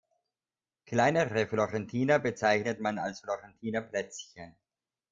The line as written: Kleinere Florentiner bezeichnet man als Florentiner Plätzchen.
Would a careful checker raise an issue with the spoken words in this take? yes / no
no